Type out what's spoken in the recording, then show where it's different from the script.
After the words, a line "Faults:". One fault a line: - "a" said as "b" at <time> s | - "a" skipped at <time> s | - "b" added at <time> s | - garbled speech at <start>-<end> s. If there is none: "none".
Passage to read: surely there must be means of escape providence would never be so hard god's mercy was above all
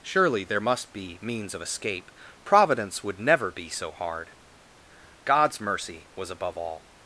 surely there must be means of escape providence would never be so hard god's mercy was above all
Faults:
none